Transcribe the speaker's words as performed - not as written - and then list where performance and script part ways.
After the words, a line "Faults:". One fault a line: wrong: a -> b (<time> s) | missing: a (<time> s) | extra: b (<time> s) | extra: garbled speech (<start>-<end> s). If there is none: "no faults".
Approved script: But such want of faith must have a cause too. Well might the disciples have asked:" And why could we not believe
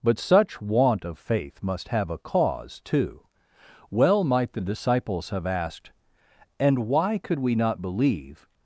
But such want of faith must have a cause too. Well might the disciples have asked:" And why could we not believe
Faults:
no faults